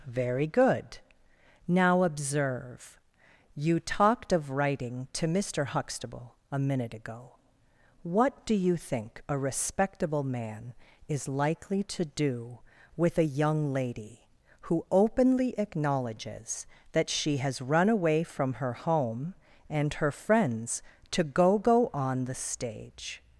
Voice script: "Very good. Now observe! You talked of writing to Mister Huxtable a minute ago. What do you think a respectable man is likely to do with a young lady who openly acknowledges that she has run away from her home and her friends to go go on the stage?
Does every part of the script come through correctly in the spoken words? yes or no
yes